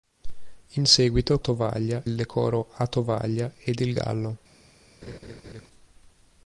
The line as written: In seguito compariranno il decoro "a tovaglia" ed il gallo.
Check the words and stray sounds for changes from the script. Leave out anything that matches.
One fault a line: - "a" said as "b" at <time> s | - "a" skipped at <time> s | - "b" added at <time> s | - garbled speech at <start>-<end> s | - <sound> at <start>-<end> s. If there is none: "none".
- "compariranno" said as "tovaglia" at 1.4 s
- laugh at 5.0-5.7 s